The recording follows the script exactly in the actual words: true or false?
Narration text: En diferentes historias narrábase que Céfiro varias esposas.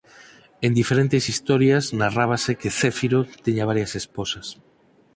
false